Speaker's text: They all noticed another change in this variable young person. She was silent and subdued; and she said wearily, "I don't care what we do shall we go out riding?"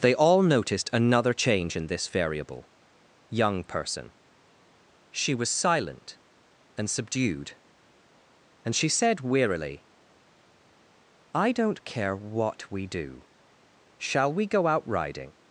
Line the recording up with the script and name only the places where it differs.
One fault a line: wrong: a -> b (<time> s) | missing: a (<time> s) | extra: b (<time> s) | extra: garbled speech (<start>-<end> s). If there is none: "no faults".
no faults